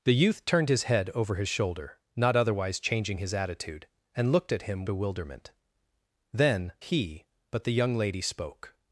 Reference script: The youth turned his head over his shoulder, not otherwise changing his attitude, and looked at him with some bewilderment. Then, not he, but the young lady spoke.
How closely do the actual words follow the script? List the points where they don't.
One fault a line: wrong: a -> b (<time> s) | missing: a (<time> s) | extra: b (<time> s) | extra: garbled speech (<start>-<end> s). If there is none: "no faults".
missing: with some (4.9 s)
missing: not (6.7 s)